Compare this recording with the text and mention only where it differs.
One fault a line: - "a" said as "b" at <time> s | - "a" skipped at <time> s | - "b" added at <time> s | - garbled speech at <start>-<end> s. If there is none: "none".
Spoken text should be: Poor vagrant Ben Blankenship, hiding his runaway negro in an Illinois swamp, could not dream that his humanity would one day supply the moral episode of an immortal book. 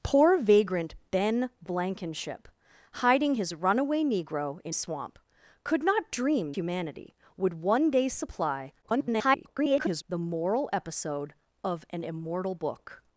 - "an Illinois" skipped at 4.8 s
- "that his" skipped at 6.5 s
- garbled speech at 8.8-10.0 s